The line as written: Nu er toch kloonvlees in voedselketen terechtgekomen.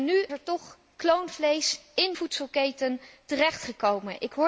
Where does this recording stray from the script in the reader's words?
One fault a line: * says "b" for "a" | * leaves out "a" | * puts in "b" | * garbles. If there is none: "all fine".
all fine